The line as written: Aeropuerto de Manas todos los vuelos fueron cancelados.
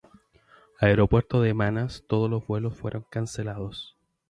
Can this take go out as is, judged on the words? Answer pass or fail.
pass